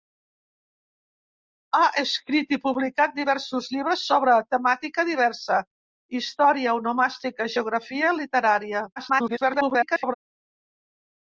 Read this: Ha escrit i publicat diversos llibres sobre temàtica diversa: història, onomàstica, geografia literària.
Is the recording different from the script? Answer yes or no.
yes